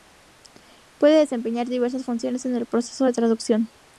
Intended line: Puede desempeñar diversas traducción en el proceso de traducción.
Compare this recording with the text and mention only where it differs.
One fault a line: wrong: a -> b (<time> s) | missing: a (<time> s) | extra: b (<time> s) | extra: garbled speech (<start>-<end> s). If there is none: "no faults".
wrong: traducción -> funciones (2.0 s)